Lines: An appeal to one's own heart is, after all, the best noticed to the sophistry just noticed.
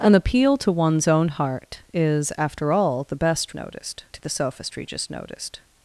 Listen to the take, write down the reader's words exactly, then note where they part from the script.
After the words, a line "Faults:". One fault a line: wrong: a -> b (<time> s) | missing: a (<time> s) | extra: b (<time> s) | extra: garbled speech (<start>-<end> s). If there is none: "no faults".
An appeal to one's own heart is, after all, the best noticed to the sophistry just noticed.
Faults:
no faults